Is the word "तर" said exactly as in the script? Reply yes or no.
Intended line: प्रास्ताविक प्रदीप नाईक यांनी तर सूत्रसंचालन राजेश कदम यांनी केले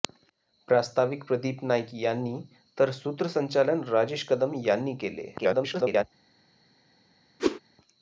yes